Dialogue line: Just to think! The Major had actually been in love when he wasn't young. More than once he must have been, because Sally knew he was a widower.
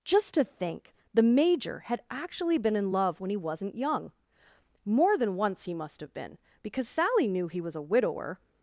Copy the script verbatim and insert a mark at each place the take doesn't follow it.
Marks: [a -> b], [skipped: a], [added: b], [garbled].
Just to think! The Major had actually been in love when he wasn't young. More than once he must have been, because Sally knew he was a widower.